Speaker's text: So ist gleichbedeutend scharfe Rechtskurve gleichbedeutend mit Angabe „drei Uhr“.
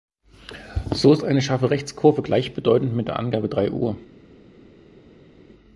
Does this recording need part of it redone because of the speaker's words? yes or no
yes